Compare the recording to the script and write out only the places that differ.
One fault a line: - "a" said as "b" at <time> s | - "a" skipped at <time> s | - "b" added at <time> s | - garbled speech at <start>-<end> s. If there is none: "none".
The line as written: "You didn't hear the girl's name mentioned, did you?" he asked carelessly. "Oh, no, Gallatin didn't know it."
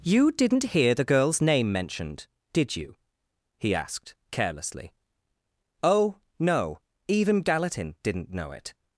- "even" added at 7.1 s